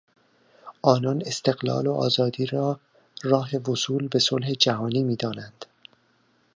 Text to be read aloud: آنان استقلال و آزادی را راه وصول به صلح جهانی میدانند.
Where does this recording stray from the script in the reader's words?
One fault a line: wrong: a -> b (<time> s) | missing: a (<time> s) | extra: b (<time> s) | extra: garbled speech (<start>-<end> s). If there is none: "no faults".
no faults